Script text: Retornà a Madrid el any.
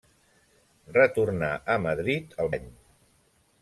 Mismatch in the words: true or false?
false